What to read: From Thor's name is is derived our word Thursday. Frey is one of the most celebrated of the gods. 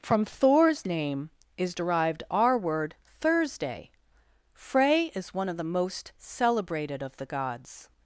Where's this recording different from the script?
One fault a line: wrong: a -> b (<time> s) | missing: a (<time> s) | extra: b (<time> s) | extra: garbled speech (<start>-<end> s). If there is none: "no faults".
missing: is (1.8 s)